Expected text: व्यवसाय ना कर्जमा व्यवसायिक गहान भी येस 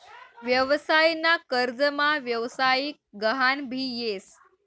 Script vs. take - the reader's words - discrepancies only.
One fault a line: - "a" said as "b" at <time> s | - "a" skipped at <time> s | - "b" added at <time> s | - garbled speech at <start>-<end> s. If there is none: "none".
none